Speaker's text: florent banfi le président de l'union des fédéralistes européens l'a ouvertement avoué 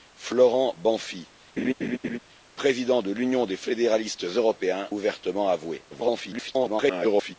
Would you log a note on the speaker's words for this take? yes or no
yes